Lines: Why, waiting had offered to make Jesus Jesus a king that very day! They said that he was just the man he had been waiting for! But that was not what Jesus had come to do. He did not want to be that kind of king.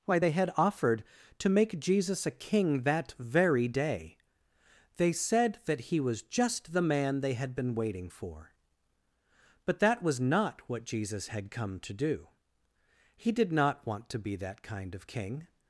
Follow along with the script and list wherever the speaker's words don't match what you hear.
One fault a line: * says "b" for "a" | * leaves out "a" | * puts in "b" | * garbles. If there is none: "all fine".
* says "they" for "waiting"
* leaves out "Jesus"
* says "they" for "he"